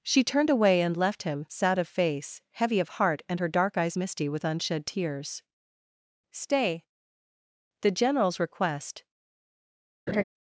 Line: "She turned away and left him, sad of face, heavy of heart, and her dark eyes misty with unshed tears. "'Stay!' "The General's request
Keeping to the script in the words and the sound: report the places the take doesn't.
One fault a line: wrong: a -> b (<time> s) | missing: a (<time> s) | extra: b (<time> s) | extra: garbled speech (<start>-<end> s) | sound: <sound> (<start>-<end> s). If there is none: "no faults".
sound: laugh (10.1-10.2 s)